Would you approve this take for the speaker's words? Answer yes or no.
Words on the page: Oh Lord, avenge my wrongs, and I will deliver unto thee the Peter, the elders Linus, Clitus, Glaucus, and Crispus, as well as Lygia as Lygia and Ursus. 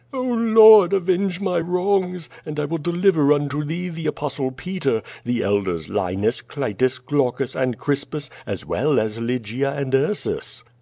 no